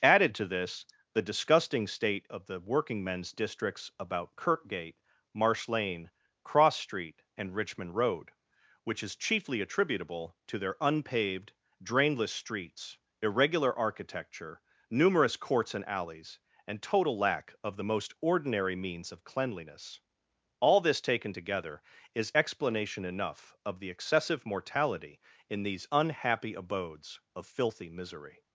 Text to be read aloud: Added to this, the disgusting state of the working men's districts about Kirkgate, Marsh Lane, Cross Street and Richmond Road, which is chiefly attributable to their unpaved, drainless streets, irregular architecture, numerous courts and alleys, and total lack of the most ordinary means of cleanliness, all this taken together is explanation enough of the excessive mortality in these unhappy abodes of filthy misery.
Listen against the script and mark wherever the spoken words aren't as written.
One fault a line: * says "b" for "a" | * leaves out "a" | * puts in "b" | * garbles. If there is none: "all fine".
all fine